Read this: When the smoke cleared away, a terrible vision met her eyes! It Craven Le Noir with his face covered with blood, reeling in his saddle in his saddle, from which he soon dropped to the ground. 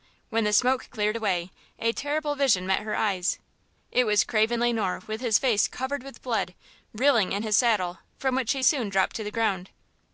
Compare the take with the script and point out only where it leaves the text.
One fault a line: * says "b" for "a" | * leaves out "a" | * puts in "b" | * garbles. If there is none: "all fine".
* puts in "was"
* leaves out "in his saddle"